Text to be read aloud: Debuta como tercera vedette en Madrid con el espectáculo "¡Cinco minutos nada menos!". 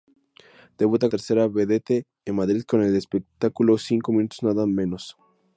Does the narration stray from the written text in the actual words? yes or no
yes